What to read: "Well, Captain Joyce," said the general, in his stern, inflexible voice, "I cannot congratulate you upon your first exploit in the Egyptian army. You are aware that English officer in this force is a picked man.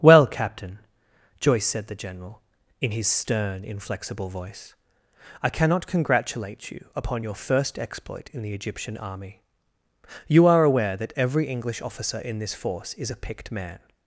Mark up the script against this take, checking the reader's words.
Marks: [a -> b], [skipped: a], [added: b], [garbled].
"Well, Captain Joyce," said the general, in his stern, inflexible voice, "I cannot congratulate you upon your first exploit in the Egyptian army. You are aware that [added: every] English officer in this force is a picked man.